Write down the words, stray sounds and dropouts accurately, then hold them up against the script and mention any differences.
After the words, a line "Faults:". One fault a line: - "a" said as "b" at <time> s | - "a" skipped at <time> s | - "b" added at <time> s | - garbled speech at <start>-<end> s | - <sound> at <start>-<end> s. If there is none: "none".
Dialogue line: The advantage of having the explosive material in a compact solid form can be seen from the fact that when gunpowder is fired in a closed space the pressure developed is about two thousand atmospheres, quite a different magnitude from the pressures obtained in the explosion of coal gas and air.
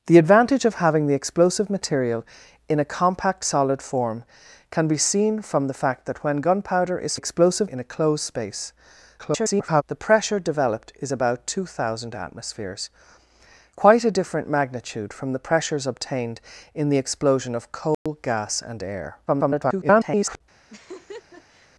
The advantage of having the explosive material in a compact solid form can be seen from the fact that when gunpowder is explosive in a closed space [garbled] the pressure developed is about two thousand atmospheres, quite a different magnitude from the pressures obtained in the explosion of coal gas and air. [garbled]
Faults:
- "fired" said as "explosive" at 7.1 s
- garbled speech at 9.2-9.8 s
- dropout at 17.9-18.1 s
- garbled speech at 19.3-20.4 s
- laugh at 20.7-21.7 s